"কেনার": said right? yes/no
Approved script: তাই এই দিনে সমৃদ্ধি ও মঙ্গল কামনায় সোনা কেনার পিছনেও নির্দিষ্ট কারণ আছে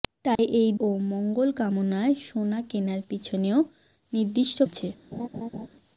yes